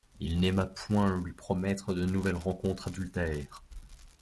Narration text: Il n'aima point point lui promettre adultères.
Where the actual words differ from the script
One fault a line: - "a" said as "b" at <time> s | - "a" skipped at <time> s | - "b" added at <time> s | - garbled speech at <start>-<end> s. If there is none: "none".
- "point" skipped at 1.1 s
- "de nouvelles rencontres" added at 1.9 s